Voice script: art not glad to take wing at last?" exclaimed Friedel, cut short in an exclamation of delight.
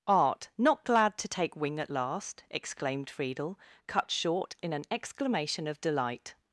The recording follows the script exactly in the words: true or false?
true